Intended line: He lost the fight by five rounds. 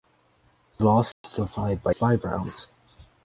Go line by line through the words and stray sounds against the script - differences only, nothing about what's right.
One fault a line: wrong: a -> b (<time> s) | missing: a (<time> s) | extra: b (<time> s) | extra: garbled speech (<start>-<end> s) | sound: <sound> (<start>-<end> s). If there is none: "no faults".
sound: dropout (1.1-1.2 s)